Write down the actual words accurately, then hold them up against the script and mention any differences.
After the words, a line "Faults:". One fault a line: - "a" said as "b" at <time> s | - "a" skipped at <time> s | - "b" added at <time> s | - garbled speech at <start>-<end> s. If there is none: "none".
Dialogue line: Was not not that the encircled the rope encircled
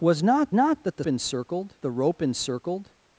Was not not that the encircled the rope encircled
Faults:
none